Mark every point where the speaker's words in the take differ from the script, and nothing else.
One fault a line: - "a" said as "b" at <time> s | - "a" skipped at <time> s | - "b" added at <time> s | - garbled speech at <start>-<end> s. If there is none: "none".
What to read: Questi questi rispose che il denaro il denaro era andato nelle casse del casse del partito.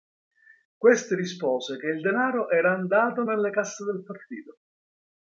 - "questi" skipped at 1.1 s
- "il denaro" skipped at 2.5 s
- "casse del" skipped at 4.0 s